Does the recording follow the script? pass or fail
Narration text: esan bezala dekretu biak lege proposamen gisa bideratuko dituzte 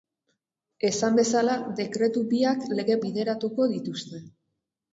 fail